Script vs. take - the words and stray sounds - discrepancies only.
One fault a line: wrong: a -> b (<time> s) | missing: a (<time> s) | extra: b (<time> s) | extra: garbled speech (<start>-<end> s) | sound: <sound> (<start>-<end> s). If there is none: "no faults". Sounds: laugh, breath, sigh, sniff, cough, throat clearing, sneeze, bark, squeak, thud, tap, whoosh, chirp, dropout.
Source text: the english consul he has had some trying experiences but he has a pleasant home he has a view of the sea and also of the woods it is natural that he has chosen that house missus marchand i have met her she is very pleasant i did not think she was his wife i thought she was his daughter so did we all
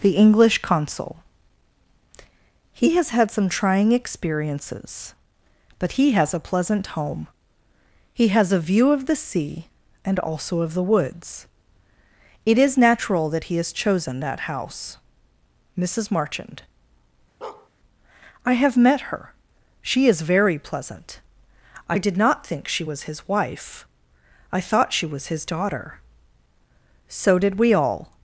sound: bark (17.4-17.7 s)